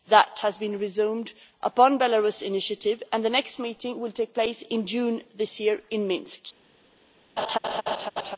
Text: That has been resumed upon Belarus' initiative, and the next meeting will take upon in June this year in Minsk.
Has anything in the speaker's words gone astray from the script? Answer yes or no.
yes